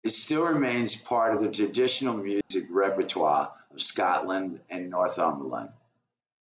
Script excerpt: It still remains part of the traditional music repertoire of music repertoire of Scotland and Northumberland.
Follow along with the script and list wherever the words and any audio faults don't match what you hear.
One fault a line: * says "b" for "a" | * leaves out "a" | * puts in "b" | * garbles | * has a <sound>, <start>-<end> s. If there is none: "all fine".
* has a dropout, 2.4-2.5 s
* leaves out "music repertoire of"